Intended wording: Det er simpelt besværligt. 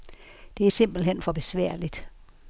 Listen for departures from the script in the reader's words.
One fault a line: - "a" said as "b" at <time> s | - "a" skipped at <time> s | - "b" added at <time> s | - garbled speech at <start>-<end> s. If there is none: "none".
- "hen for" added at 1.0 s